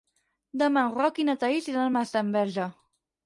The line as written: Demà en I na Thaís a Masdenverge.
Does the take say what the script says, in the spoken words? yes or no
no